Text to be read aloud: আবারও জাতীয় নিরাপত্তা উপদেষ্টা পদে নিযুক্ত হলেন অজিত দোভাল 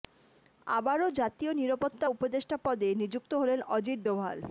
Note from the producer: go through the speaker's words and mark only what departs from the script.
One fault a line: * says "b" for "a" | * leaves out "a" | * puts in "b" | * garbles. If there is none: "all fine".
all fine